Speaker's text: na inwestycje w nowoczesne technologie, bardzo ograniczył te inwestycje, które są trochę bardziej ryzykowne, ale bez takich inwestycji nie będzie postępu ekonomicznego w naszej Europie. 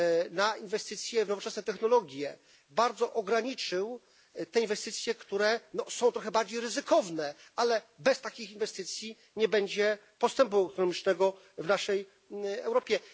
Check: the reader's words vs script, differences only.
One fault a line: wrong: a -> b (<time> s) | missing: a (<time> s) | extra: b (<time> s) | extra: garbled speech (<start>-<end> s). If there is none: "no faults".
no faults